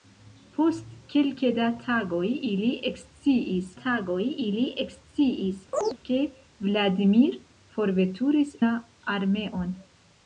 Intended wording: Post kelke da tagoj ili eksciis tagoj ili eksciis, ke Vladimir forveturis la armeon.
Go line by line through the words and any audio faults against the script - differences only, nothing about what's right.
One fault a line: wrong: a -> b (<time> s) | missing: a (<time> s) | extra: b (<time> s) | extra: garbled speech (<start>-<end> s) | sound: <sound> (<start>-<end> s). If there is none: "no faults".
sound: chirp (5.7-6.0 s)